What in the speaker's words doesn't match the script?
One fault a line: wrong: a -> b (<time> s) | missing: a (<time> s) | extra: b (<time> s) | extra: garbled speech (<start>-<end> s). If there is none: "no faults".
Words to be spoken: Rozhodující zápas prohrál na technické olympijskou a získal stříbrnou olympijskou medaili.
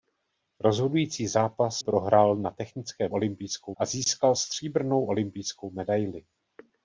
no faults